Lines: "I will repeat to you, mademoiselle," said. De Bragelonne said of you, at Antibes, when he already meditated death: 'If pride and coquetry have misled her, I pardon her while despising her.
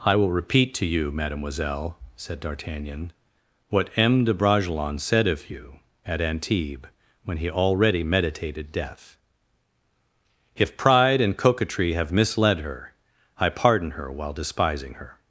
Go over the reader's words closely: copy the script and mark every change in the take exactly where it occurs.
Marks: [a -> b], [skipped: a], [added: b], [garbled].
"I will repeat to you, mademoiselle," said. [added: D'Artagnan what M] De Bragelonne said of you, at Antibes, when he already meditated death: 'If pride and coquetry have misled her, I pardon her while despising her.